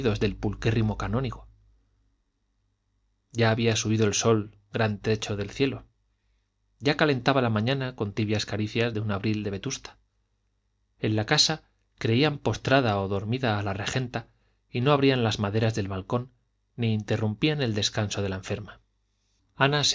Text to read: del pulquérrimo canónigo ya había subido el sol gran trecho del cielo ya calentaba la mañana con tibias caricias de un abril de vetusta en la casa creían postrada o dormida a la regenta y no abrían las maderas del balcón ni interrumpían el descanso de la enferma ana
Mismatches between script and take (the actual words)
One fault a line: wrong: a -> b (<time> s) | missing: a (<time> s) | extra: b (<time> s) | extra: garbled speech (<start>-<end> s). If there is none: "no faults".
no faults